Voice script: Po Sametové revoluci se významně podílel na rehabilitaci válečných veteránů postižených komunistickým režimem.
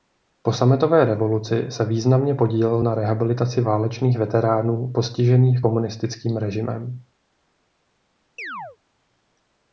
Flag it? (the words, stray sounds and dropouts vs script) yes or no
yes